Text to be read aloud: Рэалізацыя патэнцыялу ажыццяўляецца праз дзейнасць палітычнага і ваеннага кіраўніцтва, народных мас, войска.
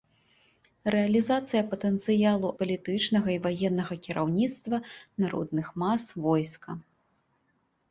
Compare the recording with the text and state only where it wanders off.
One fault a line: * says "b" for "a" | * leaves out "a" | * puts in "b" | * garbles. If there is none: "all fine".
* leaves out "ажыццяўляецца праз дзейнасць"